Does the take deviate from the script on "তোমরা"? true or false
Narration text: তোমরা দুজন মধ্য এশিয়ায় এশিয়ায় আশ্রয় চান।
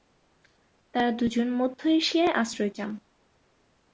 true